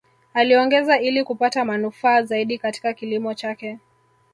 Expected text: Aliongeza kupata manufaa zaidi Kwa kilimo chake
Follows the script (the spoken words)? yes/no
no